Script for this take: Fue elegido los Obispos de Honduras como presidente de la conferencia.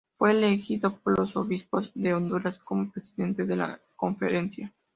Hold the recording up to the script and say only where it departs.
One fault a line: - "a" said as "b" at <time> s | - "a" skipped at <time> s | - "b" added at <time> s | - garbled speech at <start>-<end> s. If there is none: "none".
- "por" added at 1.0 s